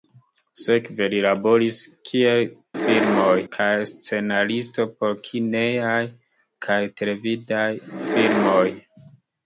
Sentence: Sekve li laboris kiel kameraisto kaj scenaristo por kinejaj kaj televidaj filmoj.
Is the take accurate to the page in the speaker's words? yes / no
no